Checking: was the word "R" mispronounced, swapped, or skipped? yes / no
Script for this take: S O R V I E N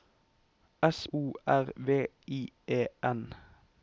no